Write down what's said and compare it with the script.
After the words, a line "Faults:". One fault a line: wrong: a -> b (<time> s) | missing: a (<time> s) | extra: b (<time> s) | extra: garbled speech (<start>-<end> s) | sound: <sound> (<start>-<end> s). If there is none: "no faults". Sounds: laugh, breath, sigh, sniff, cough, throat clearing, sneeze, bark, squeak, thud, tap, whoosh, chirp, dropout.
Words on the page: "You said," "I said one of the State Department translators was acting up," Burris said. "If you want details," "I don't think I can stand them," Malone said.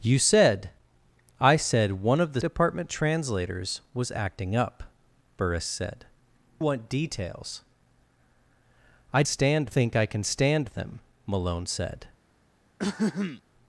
"You said," "I said one of the Department translators was acting up," Burris said. "Want details," "I stand think I can stand them," Malone said.
Faults:
missing: State (2.4 s)
missing: If you (6.1 s)
wrong: don't -> stand (9.2 s)
sound: throat clearing (12.8-13.4 s)